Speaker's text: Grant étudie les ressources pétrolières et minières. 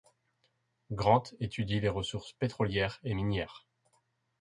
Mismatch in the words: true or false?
false